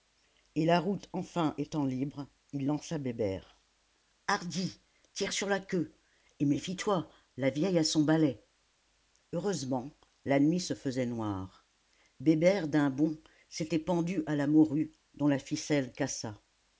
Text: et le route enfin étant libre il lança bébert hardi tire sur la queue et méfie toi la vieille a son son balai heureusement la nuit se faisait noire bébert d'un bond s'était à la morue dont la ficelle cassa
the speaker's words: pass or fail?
fail